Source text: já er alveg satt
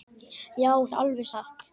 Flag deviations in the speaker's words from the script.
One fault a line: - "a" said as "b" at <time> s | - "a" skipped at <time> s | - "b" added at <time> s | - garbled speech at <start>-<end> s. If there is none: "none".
none